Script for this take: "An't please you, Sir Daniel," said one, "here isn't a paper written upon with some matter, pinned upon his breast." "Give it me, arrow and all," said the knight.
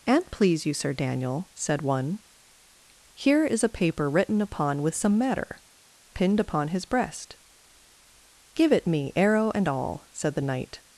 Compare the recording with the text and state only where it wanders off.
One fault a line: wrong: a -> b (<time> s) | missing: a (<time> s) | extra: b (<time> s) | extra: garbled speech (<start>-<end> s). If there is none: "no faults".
wrong: isn't -> is (3.5 s)